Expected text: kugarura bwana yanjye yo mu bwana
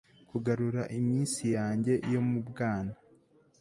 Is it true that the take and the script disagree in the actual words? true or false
true